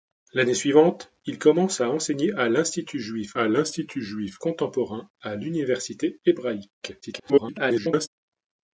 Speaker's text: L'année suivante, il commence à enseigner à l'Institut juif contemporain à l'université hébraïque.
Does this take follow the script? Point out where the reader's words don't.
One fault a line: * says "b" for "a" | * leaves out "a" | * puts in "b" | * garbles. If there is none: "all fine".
* puts in "à l'Institut juif"
* garbles